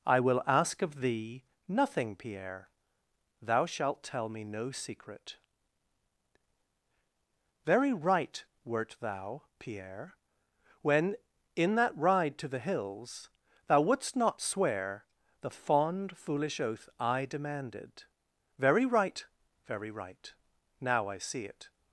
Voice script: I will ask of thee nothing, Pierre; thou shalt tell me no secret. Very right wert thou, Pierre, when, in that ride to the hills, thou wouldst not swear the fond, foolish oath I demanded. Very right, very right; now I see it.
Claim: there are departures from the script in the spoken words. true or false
false